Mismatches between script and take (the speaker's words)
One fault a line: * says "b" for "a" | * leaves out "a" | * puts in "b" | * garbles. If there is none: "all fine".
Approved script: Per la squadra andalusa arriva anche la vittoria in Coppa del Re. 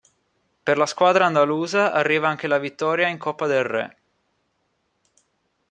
all fine